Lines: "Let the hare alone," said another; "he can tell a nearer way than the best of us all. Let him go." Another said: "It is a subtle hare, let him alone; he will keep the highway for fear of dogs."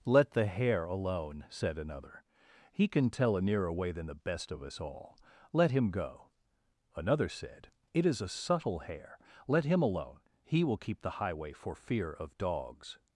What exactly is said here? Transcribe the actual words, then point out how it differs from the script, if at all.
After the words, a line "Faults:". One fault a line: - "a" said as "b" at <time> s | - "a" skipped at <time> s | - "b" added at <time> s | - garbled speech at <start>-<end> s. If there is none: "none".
"Let the hare alone," said another; "he can tell a nearer way than the best of us all. Let him go." Another said: "It is a subtle hare, let him alone; he will keep the highway for fear of dogs."
Faults:
none